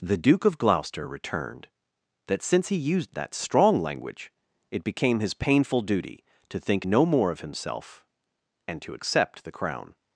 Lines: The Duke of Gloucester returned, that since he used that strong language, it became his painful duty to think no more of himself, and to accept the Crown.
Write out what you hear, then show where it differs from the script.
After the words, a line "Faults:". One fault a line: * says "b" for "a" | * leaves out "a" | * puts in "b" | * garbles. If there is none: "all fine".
The Duke of Gloucester returned, that since he used that strong language, it became his painful duty to think no more of himself, and to accept the Crown.
Faults:
all fine